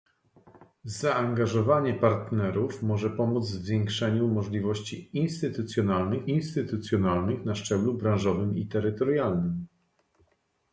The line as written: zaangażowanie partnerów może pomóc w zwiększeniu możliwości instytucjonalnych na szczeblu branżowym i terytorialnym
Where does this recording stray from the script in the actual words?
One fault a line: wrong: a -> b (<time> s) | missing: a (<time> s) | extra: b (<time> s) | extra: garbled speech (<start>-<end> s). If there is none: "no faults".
extra: instytucjonalnych (6.3 s)